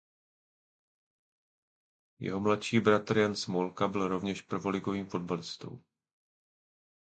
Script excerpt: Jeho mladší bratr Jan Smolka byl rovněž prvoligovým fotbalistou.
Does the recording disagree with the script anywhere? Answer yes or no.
no